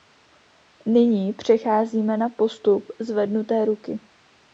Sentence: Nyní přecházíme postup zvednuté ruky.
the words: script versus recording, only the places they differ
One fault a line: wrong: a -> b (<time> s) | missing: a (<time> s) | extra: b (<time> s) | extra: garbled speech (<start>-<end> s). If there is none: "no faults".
extra: na (2.2 s)